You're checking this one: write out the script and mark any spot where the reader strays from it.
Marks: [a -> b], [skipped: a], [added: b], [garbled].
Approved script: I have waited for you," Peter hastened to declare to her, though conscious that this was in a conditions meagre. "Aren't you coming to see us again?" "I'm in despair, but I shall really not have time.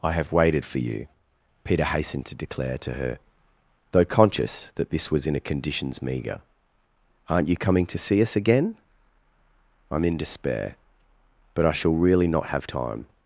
I have waited for you," Peter hastened to declare to her, though conscious that this was in a conditions meagre. "Aren't you coming to see us again?" "I'm in despair, but I shall really not have time.